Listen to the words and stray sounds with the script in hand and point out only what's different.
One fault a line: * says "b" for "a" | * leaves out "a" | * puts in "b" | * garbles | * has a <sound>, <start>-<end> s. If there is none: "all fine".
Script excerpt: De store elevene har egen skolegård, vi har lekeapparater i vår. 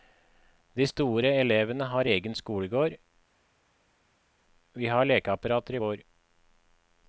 all fine